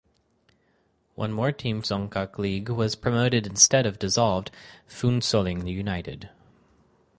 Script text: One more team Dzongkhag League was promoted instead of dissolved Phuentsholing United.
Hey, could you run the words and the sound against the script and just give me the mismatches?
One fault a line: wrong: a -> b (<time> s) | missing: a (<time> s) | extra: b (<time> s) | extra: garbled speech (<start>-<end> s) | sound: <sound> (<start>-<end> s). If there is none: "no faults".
no faults